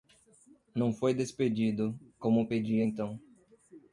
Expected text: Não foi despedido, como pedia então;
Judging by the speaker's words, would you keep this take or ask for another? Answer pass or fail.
pass